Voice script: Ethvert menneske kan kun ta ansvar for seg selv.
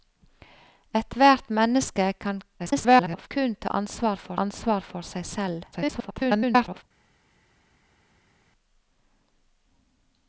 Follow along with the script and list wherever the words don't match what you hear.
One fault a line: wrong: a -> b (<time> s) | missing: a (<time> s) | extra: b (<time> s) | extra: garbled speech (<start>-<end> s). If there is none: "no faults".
extra: garbled speech (2.6-3.3 s)
extra: ansvar for (4.4 s)
extra: garbled speech (5.7-6.8 s)